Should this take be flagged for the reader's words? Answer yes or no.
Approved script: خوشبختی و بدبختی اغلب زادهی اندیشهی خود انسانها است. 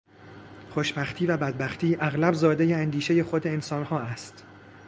no